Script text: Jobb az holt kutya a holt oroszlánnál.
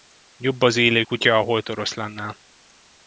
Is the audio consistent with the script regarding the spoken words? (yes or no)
no